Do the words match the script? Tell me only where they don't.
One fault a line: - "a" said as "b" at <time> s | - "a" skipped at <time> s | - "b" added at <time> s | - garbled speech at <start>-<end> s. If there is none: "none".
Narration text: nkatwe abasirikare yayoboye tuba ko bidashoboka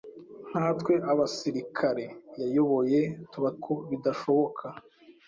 none